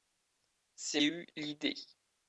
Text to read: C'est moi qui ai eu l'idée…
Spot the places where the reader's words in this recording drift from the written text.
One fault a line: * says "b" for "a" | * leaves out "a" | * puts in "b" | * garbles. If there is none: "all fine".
* leaves out "moi qui"